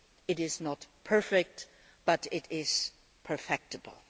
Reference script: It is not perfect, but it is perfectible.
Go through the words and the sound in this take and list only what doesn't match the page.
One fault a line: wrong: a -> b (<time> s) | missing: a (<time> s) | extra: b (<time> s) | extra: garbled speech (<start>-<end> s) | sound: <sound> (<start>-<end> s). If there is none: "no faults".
no faults